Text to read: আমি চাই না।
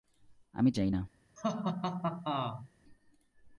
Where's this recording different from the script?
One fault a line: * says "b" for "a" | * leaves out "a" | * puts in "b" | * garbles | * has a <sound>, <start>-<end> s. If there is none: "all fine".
* has a laugh, 1.4-2.7 s